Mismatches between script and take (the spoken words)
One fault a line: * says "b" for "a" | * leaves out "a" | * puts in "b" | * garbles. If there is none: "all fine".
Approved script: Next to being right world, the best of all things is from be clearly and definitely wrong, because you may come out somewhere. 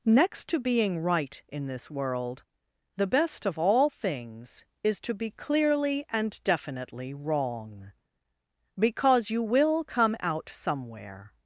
* puts in "in this"
* says "to" for "from"
* says "will" for "may"